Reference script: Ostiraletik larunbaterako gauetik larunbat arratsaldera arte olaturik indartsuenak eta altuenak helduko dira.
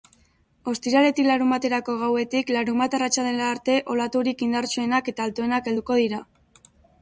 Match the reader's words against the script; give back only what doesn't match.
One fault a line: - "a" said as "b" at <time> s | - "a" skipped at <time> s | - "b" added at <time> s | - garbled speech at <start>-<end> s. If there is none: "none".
none